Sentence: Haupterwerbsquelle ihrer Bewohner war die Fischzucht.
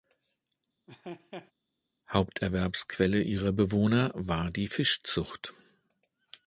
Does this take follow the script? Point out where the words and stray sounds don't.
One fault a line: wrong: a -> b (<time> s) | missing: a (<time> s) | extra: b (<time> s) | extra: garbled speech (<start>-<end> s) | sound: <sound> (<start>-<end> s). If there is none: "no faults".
sound: laugh (0.9-1.5 s)